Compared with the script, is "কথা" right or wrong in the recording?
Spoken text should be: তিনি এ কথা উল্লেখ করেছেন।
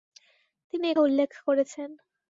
wrong